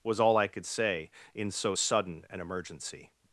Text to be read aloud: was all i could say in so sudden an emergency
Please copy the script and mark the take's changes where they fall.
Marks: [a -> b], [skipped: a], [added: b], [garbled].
was all i could say in so sudden an emergency